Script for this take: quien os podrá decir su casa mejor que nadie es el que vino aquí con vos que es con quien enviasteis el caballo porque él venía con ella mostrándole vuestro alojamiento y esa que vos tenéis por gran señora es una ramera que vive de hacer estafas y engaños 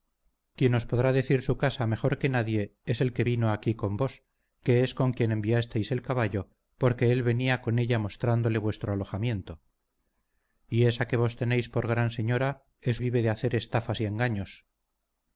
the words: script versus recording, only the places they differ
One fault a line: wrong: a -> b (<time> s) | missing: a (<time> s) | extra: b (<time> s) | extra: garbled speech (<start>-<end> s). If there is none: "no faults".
missing: una ramera que (13.0 s)